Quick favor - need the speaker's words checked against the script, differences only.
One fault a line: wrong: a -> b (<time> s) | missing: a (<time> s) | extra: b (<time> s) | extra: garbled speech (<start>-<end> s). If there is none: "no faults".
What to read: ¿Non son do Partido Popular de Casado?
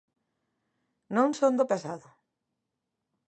missing: Partido Popular de (1.7 s)